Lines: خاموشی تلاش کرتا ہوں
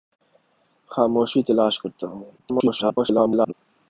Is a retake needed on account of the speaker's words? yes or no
yes